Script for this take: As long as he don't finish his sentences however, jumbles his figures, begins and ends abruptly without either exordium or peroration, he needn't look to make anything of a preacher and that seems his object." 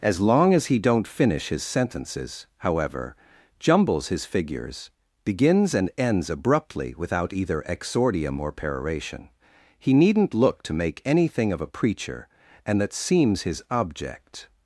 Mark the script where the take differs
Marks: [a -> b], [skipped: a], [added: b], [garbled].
As long as he don't finish his sentences however, jumbles his figures, begins and ends abruptly without either exordium or peroration, he needn't look to make anything of a preacher and that seems his object."